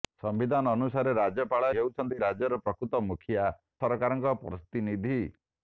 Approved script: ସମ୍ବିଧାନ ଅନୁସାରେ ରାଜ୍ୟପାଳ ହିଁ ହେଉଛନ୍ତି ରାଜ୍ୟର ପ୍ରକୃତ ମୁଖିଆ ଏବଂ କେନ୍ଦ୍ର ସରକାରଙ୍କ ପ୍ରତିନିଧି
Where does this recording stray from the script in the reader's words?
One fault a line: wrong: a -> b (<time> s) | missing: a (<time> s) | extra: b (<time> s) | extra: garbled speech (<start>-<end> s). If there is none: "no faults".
missing: ହିଁ (1.7 s)
missing: ଏବଂ କେନ୍ଦ୍ର (3.5 s)